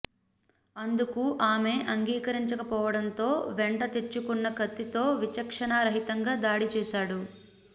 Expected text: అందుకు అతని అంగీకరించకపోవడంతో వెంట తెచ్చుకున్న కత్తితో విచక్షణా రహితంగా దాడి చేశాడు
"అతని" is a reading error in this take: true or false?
true